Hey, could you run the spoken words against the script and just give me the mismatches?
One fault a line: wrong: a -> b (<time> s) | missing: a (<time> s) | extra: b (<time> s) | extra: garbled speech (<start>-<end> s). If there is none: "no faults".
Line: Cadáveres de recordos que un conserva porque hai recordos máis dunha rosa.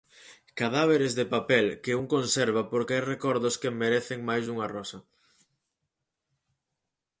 wrong: recordos -> papel (1.4 s)
extra: que merecen (3.6 s)